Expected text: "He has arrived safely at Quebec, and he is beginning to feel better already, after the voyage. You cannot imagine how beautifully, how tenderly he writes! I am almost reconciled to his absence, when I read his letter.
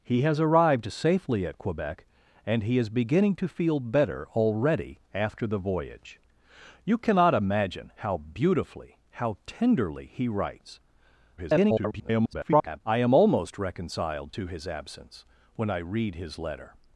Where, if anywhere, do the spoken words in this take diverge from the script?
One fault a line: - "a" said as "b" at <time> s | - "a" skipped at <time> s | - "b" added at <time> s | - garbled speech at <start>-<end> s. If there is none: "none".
- garbled speech at 11.4-12.8 s